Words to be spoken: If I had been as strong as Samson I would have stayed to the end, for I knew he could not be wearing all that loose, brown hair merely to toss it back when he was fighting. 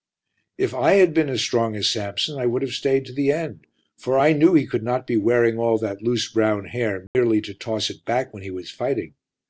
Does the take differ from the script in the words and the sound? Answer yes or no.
yes